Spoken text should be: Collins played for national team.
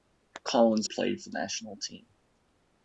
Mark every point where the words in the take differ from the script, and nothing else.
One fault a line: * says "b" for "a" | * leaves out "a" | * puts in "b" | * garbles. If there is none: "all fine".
all fine